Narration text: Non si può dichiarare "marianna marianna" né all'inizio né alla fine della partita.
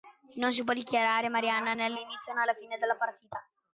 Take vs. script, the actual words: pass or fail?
fail